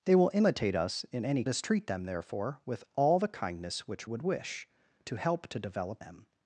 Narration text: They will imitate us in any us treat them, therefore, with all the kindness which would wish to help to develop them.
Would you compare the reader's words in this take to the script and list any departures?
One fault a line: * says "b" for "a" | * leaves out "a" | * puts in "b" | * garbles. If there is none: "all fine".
all fine